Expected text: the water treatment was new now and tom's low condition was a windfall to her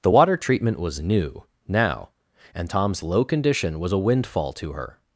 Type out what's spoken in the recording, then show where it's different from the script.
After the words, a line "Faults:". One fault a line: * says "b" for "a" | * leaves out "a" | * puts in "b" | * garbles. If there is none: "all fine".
the water treatment was new now and tom's low condition was a windfall to her
Faults:
all fine